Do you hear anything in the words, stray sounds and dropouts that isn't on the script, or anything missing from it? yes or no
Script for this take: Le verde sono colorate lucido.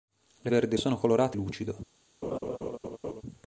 yes